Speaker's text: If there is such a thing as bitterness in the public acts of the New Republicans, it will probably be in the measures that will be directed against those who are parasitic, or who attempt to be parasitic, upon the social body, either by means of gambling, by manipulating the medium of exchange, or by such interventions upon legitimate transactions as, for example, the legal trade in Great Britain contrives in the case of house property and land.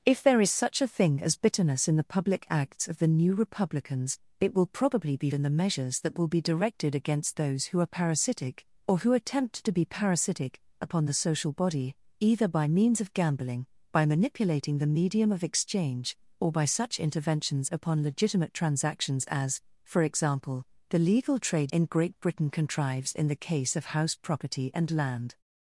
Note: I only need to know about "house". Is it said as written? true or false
true